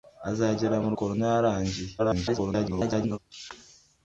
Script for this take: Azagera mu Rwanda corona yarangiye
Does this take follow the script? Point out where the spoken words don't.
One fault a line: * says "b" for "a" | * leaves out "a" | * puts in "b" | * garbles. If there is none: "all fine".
* leaves out "Rwanda"
* garbles